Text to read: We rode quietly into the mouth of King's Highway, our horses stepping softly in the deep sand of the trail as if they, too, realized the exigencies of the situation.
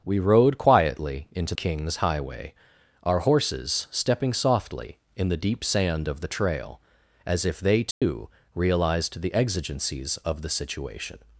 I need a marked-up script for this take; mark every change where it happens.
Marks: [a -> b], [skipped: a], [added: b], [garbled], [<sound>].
We rode quietly into [skipped: the mouth of] King's Highway, our horses stepping softly in the deep sand of the trail as if they, too, [dropout] realized the exigencies of the situation.